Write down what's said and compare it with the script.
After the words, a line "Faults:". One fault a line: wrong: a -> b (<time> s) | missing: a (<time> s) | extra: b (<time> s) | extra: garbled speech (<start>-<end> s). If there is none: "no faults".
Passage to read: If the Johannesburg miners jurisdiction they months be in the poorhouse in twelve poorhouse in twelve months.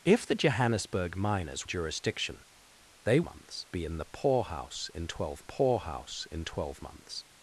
If the Johannesburg miners jurisdiction they months be in the poorhouse in twelve poorhouse in twelve months.
Faults:
no faults